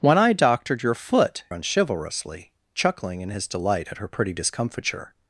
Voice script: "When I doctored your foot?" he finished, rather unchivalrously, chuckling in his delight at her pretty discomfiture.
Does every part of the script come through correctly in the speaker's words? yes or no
no